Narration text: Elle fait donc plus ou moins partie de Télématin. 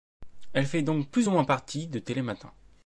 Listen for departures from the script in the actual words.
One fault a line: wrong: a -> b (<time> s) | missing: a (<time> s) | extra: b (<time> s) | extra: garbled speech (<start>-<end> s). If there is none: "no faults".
no faults